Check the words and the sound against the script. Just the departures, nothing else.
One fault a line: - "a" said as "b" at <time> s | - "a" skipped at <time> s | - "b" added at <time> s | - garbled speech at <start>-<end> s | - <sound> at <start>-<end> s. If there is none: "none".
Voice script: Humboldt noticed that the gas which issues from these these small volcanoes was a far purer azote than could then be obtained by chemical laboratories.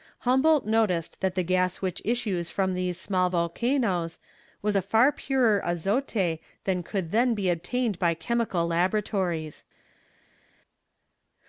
- "these" skipped at 3.0 s